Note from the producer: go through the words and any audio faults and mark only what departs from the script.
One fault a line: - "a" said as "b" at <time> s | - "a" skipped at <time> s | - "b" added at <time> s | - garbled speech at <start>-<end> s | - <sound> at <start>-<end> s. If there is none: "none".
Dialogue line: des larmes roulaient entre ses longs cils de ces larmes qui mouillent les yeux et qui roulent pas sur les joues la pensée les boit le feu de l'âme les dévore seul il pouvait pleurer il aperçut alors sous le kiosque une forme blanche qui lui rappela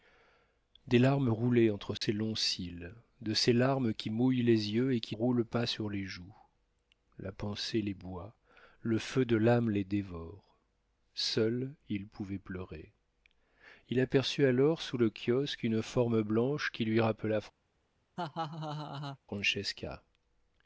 - dropout at 2.0-2.0 s
- laugh at 18.2-19.2 s